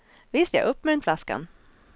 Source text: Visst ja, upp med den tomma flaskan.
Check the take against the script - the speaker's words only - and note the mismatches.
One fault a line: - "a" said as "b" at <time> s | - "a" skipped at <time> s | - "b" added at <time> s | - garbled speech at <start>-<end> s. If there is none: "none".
- "tomma" skipped at 1.0 s